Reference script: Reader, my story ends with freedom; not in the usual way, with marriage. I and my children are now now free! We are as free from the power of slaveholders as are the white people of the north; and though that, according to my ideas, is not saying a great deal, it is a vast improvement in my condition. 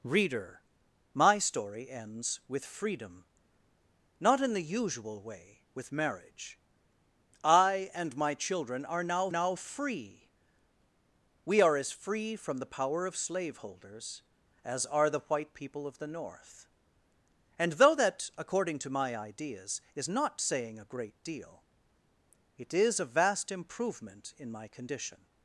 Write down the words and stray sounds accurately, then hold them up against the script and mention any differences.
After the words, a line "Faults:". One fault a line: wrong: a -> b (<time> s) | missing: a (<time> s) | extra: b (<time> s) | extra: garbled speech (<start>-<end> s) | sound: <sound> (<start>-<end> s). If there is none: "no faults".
Reader, my story ends with freedom; not in the usual way, with marriage. I and my children are now now free! We are as free from the power of slaveholders as are the white people of the north; and though that, according to my ideas, is not saying a great deal, it is a vast improvement in my condition.
Faults:
no faults